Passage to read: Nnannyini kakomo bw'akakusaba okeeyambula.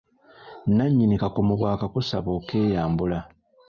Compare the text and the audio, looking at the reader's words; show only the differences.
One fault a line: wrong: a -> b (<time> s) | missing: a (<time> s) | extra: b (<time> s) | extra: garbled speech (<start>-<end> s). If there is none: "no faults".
no faults